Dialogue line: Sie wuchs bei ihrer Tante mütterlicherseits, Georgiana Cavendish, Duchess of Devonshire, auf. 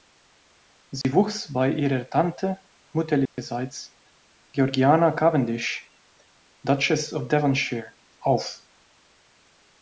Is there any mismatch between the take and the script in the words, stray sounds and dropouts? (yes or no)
yes